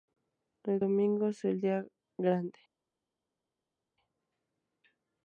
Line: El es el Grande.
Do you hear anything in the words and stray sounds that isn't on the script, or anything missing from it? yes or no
yes